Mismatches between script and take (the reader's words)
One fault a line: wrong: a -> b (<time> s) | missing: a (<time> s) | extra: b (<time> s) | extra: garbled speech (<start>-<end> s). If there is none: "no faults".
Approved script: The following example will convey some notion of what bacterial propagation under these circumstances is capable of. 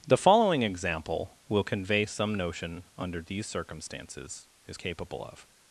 missing: of what bacterial propagation (2.8 s)